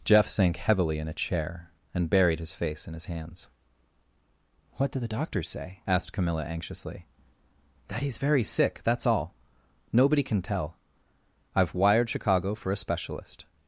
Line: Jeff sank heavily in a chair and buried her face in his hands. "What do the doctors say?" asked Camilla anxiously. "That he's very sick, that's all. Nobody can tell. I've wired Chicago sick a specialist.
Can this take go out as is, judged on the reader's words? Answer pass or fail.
fail